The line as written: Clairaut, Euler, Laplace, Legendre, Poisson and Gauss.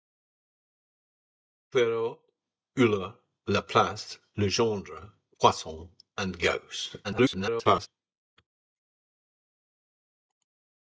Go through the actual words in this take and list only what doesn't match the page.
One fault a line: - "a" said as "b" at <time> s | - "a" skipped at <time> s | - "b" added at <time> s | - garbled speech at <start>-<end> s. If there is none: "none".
- garbled speech at 7.0-7.9 s